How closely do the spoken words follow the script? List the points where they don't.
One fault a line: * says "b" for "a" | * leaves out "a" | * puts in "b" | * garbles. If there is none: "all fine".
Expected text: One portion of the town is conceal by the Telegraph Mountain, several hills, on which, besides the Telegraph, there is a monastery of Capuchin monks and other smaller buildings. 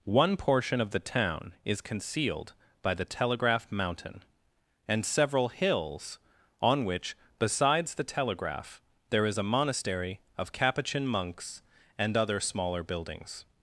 * says "concealed" for "conceal"
* puts in "and"